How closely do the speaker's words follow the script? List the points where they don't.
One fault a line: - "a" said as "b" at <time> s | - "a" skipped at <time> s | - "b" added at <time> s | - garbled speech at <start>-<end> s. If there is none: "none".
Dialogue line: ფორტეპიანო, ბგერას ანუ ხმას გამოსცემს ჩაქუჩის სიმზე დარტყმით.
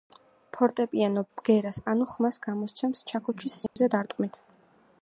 none